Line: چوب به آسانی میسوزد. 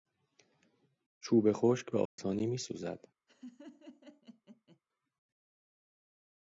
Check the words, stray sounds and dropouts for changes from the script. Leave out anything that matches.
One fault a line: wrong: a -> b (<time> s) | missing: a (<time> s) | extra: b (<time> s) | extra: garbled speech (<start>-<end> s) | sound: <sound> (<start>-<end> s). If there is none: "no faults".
extra: خشک (1.5 s)
sound: dropout (2.1-2.2 s)
sound: laugh (3.3-4.8 s)